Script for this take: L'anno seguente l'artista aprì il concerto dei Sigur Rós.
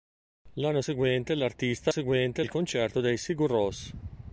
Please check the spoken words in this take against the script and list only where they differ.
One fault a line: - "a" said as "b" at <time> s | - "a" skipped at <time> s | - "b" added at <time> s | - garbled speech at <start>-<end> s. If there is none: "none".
- "aprì" said as "seguente" at 1.9 s